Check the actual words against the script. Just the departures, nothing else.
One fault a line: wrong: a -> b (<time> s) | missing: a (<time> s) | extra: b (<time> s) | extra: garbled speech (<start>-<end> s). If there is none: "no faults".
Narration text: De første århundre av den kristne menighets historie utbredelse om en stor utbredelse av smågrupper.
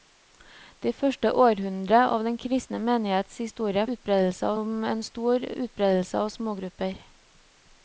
no faults